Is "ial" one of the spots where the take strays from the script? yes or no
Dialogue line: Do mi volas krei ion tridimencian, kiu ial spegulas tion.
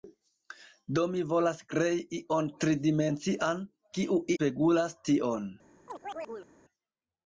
yes